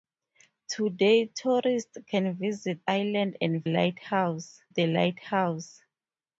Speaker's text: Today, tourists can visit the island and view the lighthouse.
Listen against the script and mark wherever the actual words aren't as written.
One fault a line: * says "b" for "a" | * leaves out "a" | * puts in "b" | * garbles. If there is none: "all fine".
* leaves out "the"
* says "lighthouse" for "view"